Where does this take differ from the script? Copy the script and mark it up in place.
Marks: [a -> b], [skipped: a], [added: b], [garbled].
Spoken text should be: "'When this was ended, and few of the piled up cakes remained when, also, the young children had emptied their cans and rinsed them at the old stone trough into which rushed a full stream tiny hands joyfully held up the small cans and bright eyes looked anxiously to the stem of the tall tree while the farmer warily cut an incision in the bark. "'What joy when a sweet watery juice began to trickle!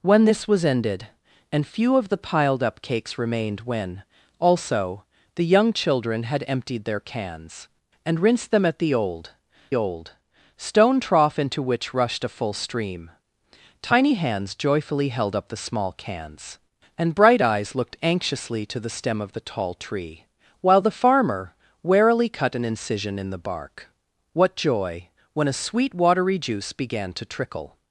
"'When this was ended, and few of the piled up cakes remained when, also, the young children had emptied their cans and rinsed them at the old [added: old] stone trough into which rushed a full stream tiny hands joyfully held up the small cans and bright eyes looked anxiously to the stem of the tall tree while the farmer warily cut an incision in the bark. "'What joy when a sweet watery juice began to trickle!